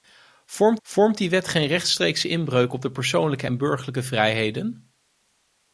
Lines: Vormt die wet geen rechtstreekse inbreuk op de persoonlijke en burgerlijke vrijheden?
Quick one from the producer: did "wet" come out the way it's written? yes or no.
yes